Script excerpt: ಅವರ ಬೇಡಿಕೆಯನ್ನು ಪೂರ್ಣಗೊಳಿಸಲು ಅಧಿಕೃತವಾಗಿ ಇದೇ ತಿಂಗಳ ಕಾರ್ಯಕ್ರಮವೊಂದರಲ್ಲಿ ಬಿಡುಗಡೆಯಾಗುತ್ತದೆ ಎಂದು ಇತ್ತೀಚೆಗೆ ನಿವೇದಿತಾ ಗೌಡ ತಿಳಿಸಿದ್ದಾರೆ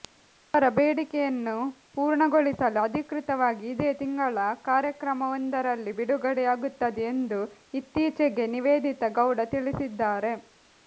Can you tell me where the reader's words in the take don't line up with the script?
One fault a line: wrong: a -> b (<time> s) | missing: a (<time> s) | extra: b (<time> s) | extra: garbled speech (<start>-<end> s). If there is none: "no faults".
no faults